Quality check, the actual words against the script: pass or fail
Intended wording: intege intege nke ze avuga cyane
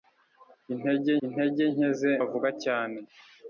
pass